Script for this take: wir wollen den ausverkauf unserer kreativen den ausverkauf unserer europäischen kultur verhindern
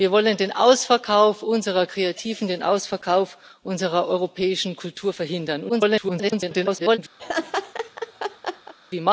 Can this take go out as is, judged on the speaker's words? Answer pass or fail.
fail